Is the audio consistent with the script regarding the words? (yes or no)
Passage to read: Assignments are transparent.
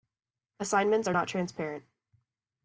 no